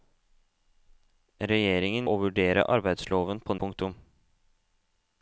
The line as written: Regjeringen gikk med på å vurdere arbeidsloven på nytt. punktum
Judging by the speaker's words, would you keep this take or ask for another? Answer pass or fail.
fail